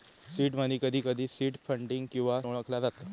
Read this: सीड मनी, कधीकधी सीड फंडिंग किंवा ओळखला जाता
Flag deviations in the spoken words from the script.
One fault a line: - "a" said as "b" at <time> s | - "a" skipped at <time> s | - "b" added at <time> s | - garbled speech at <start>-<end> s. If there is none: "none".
none